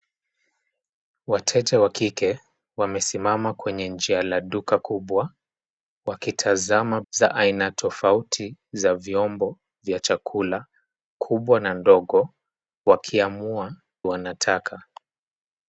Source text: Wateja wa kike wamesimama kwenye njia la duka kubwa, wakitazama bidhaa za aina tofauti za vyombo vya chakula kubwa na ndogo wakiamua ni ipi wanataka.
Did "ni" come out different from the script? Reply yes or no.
yes